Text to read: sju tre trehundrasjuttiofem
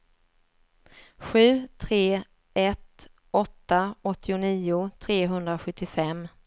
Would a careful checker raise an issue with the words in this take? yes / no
yes